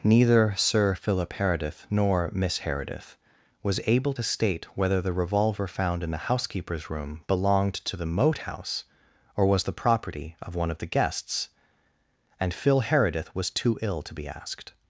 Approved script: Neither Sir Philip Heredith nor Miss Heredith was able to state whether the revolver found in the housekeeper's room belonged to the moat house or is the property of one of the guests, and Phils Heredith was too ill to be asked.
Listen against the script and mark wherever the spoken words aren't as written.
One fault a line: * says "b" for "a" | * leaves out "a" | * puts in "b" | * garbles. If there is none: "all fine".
* says "was" for "is"
* says "Phil" for "Phils"